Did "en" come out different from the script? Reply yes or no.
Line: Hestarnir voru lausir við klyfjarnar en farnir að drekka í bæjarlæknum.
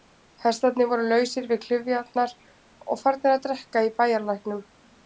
yes